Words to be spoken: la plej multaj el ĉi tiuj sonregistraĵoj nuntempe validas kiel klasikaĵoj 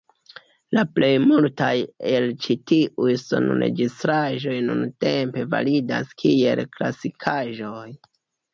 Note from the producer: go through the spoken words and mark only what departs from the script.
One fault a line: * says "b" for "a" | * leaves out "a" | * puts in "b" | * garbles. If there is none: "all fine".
all fine